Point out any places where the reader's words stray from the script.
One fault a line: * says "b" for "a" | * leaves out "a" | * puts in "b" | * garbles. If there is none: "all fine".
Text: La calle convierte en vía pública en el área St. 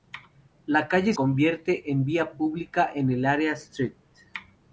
all fine